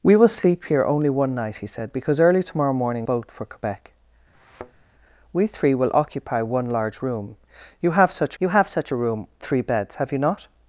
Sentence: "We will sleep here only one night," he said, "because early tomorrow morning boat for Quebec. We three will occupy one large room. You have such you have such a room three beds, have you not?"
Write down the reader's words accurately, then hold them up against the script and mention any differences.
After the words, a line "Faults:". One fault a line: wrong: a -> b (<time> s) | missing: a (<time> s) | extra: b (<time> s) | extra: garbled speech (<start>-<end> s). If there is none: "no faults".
"We will sleep here only one night," he said, "because early tomorrow morning boat for Quebec. We three will occupy one large room. You have such you have such a room three beds, have you not?"
Faults:
no faults